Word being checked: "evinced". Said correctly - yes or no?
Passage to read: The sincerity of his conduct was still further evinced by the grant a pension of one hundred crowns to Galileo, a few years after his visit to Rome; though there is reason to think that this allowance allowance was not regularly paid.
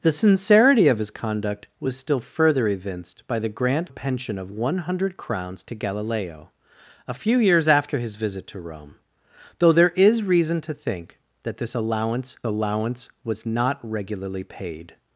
yes